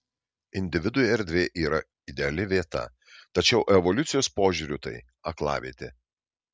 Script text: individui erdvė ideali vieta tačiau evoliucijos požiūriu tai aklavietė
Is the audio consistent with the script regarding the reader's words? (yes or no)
no